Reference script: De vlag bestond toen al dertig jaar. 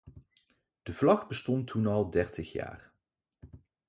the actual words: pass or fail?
pass